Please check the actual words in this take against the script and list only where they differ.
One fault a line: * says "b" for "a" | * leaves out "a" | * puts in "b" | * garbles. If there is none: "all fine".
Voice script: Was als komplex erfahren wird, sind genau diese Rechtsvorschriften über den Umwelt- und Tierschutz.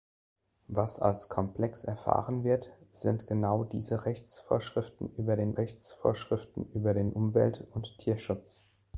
* puts in "Rechtsvorschriften über den"